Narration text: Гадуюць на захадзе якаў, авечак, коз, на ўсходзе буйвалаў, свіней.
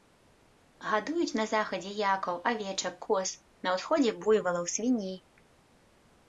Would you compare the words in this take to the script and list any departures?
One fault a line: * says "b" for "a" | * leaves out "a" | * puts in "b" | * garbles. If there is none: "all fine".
all fine